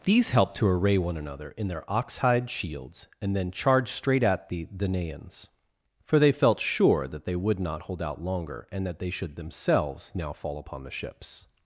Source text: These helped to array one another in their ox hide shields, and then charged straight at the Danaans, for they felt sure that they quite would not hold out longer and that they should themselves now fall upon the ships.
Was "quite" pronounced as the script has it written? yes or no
no